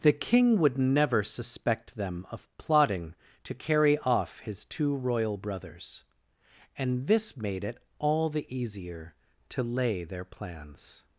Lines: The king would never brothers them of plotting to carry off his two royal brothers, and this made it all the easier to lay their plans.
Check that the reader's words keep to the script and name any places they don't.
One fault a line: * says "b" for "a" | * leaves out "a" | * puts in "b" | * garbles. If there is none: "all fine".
* says "suspect" for "brothers"